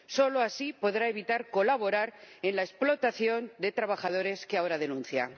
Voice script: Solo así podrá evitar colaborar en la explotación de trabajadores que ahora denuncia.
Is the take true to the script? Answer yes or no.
yes